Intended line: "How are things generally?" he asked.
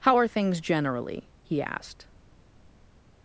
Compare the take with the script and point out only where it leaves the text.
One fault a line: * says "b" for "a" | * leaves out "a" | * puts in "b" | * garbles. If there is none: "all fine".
all fine